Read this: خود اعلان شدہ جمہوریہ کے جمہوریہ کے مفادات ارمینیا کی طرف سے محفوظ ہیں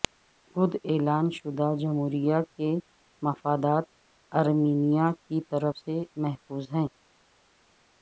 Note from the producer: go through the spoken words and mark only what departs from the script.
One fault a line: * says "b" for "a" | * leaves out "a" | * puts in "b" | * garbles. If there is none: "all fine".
* leaves out "جمہوریہ کے"